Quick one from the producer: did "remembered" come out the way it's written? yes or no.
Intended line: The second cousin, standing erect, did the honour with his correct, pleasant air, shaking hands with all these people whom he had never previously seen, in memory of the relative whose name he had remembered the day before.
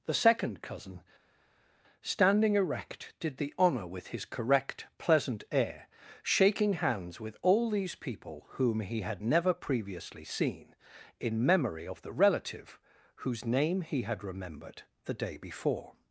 yes